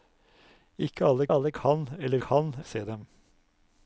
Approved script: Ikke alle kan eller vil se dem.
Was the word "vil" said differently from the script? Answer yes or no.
yes